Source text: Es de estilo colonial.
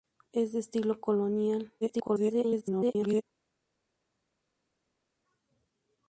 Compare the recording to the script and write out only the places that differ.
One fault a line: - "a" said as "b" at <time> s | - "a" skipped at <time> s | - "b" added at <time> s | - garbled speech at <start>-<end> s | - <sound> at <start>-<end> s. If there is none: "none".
- garbled speech at 1.8-3.2 s